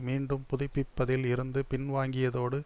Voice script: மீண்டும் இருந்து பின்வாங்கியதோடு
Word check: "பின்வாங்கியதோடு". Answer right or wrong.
right